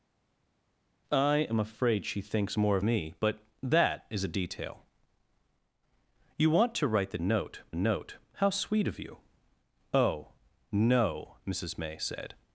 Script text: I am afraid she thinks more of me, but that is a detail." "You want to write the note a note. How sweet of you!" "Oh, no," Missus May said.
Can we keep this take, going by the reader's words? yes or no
yes